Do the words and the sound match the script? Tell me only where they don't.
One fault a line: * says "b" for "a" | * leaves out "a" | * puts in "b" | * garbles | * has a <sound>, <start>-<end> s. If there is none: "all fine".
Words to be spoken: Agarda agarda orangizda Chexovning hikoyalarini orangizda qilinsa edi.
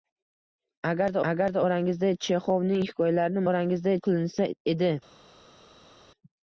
all fine